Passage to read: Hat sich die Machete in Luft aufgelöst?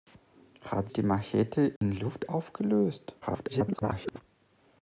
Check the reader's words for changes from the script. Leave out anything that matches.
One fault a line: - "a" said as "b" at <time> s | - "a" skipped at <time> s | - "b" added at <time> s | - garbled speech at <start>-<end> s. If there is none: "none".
- "sich" skipped at 0.9 s
- garbled speech at 3.2-4.2 s